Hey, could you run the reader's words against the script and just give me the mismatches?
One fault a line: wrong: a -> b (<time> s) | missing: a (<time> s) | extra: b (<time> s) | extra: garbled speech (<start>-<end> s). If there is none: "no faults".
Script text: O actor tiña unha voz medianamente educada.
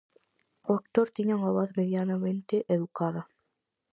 no faults